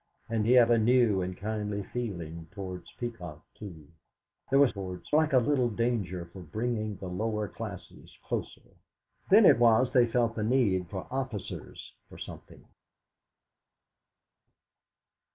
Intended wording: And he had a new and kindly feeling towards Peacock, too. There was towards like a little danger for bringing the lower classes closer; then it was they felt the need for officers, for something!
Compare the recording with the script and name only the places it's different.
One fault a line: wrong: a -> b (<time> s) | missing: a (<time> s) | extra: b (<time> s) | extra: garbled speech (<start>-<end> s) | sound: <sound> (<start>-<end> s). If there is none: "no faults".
no faults